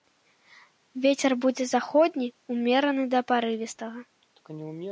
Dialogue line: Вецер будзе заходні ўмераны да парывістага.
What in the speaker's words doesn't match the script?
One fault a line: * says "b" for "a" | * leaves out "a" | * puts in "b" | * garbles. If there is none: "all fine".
all fine